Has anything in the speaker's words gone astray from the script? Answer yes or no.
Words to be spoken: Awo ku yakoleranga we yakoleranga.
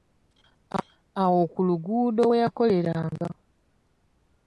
yes